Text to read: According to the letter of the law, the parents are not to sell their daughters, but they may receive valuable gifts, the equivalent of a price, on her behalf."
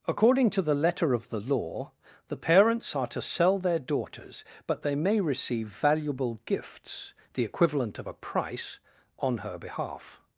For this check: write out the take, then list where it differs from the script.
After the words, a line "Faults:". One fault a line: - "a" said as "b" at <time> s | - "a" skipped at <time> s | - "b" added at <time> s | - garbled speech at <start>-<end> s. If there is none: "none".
According to the letter of the law, the parents are to sell their daughters, but they may receive valuable gifts, the equivalent of a price, on her behalf."
Faults:
- "not" skipped at 3.1 s